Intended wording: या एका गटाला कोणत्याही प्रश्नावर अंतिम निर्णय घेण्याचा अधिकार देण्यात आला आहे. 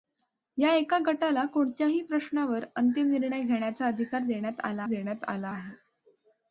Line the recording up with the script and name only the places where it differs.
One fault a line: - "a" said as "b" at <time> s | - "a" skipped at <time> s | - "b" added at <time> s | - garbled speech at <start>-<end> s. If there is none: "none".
- "देण्यात आला" added at 4.8 s